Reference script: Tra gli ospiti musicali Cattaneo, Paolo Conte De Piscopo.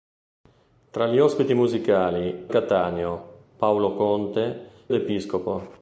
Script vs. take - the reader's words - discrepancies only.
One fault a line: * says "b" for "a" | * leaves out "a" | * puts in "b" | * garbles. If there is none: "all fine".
all fine